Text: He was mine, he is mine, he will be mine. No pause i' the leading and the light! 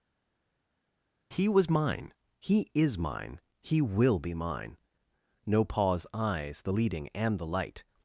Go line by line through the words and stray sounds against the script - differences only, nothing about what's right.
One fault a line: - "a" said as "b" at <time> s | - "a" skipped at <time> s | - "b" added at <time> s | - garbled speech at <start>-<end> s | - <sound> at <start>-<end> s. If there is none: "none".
- "i" said as "eyes" at 6.1 s